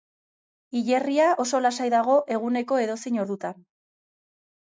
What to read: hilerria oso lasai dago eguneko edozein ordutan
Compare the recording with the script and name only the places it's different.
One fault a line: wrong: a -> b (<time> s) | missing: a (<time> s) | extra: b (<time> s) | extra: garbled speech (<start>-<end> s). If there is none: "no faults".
no faults